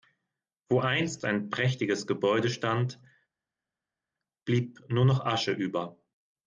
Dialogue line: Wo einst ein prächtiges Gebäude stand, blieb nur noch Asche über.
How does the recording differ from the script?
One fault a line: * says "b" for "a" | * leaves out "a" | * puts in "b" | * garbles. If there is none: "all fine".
all fine